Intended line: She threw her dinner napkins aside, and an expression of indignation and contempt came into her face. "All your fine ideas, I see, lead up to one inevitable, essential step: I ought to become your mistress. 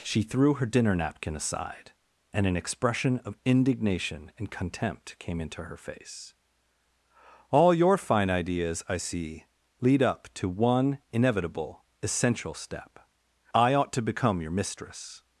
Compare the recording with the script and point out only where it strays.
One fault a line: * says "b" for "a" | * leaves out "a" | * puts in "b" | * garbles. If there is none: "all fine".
* says "napkin" for "napkins"